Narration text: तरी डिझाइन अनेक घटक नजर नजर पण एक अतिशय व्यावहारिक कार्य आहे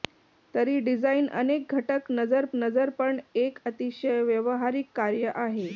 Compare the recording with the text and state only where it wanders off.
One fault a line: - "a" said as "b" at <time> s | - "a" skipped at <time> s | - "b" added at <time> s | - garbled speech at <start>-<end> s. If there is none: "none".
none